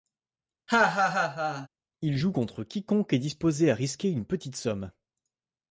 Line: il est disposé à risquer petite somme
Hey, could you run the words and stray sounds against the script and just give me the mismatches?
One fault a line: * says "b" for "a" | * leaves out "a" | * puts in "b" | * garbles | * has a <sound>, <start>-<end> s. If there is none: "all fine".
* has a laugh, 0.7-1.7 s
* puts in "joue contre quiconque"
* puts in "une"